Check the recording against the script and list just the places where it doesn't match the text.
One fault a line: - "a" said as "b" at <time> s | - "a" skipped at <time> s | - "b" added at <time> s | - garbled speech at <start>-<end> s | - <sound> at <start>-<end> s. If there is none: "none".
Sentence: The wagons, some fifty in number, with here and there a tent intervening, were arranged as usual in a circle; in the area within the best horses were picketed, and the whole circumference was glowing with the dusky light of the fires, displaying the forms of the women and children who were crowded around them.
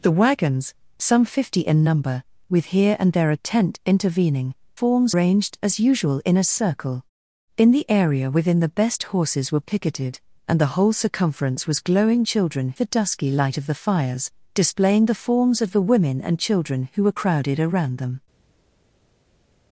- "were" said as "forms" at 4.7 s
- "with" said as "children" at 12.3 s